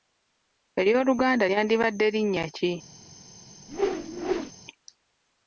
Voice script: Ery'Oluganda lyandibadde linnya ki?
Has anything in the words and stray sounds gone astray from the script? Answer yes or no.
yes